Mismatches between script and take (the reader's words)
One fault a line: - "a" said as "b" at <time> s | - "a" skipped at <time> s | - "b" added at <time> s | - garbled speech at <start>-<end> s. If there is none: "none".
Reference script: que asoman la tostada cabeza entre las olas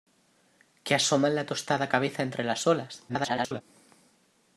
- garbled speech at 3.1-3.6 s